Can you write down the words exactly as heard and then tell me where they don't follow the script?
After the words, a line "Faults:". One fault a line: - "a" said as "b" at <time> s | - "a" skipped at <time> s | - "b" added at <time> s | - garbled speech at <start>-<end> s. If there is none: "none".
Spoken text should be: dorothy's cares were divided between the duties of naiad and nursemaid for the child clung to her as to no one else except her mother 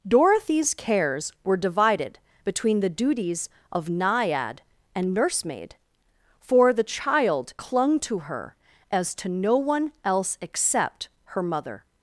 dorothy's cares were divided between the duties of naiad and nursemaid for the child clung to her as to no one else except her mother
Faults:
none